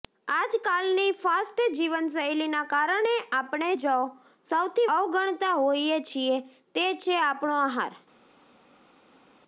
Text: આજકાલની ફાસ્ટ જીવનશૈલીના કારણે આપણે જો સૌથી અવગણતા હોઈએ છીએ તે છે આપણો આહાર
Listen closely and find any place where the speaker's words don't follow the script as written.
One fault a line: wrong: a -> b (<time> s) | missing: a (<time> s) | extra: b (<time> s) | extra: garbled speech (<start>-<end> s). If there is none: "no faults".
no faults